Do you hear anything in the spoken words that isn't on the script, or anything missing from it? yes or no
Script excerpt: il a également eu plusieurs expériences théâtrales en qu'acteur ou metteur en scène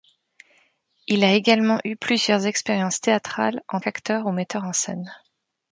no